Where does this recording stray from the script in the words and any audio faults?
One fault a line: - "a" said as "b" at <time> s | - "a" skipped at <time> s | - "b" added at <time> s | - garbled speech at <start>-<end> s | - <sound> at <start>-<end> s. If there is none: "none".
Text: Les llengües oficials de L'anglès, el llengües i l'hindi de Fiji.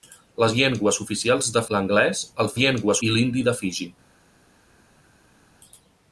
none